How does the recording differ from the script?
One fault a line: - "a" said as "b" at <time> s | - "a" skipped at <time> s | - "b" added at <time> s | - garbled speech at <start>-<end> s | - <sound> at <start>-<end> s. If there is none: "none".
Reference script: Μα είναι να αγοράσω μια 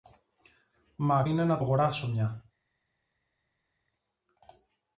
none